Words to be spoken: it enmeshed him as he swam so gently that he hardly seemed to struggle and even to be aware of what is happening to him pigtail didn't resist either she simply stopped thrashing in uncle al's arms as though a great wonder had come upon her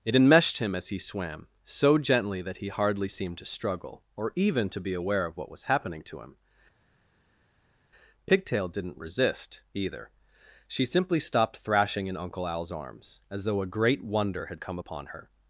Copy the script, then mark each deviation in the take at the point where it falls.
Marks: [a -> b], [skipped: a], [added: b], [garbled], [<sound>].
it enmeshed him as he swam so gently that he hardly seemed to struggle [and -> or] even to be aware of what [is -> was] happening to him pigtail didn't resist either she simply stopped thrashing in uncle al's arms as though a great wonder had come upon her